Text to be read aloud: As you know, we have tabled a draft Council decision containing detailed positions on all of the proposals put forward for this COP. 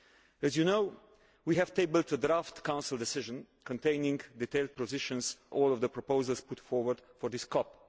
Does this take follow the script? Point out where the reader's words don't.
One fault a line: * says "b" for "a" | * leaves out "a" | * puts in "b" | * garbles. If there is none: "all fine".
* leaves out "on"